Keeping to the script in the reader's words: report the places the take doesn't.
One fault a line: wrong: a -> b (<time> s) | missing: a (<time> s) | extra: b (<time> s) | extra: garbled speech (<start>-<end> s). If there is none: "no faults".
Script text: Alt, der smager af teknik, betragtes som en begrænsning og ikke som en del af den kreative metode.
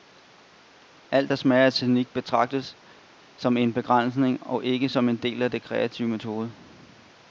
no faults